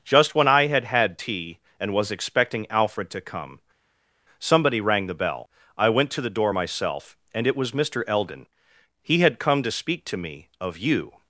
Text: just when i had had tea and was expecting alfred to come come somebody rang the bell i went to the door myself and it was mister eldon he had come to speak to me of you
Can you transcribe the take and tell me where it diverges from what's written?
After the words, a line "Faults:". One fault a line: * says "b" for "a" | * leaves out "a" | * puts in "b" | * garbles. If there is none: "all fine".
just when i had had tea and was expecting alfred to come somebody rang the bell i went to the door myself and it was mister eldon he had come to speak to me of you
Faults:
* leaves out "come"